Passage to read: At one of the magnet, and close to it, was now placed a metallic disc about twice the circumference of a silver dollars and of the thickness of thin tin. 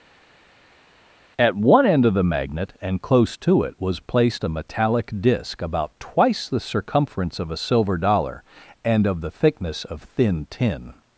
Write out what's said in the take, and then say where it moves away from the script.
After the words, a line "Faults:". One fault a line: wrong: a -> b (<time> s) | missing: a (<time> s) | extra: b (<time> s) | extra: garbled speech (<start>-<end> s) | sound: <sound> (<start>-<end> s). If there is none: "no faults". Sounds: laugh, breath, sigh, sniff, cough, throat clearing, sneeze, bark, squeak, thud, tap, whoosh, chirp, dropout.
At one end of the magnet, and close to it, was placed a metallic disc about twice the circumference of a silver dollar and of the thickness of thin tin.
Faults:
extra: end (1.9 s)
missing: now (4.0 s)
wrong: dollars -> dollar (8.0 s)